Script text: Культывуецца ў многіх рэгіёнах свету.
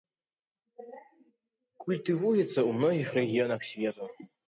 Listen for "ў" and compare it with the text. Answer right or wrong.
right